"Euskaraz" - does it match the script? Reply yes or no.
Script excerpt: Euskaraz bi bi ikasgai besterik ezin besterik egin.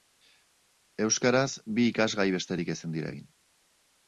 yes